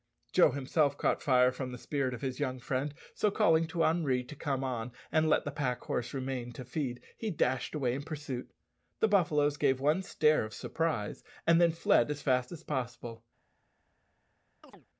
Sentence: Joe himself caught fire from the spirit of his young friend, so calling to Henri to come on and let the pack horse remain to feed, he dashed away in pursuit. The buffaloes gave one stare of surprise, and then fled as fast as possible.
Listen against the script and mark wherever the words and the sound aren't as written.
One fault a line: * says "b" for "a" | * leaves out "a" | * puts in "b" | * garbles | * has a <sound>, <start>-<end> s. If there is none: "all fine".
* has a chirp, 14.6-14.9 s